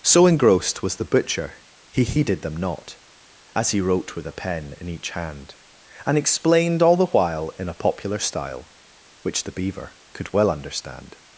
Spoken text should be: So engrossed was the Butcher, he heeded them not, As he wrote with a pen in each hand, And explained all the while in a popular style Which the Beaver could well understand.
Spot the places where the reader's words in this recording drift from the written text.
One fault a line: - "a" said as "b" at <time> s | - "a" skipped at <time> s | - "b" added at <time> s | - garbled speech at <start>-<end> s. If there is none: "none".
none